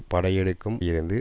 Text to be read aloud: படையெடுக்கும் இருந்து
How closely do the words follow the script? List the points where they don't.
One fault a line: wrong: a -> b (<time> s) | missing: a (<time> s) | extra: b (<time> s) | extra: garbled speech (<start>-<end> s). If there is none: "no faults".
no faults